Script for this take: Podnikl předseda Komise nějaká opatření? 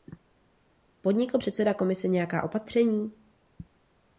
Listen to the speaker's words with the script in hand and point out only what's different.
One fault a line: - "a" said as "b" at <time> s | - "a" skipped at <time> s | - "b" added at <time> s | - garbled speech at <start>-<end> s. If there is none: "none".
none